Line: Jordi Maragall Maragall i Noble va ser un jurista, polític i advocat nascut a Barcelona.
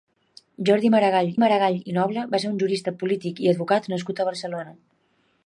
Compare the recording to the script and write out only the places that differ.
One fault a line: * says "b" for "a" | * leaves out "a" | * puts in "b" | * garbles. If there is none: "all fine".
all fine